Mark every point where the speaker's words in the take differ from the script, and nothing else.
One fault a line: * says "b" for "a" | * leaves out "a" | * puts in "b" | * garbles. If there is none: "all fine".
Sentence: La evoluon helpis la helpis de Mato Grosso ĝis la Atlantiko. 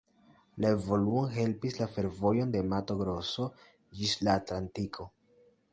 * says "fervojo" for "helpis"